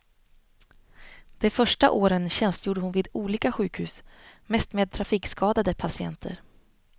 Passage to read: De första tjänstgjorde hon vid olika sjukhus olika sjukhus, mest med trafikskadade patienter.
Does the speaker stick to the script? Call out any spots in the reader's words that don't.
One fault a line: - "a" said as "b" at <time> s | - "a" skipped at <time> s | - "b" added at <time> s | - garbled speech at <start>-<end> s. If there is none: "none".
- "åren" added at 1.9 s
- "olika sjukhus" skipped at 4.0 s